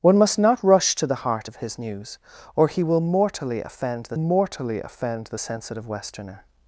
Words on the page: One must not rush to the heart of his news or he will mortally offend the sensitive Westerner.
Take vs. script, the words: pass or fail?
fail